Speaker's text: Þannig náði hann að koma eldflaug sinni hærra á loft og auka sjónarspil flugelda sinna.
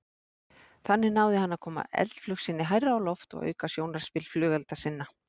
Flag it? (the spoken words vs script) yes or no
no